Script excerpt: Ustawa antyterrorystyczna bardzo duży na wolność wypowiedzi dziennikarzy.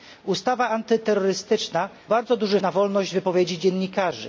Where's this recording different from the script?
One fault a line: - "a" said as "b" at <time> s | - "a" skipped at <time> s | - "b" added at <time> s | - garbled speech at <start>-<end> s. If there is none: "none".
none